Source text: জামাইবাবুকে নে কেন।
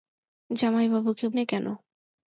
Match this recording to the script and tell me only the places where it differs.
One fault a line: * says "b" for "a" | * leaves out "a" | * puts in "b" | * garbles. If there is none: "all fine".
all fine